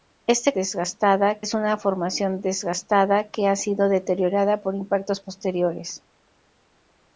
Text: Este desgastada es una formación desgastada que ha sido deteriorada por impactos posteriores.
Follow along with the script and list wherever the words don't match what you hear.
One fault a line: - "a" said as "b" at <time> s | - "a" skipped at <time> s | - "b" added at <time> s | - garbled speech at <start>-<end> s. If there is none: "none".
none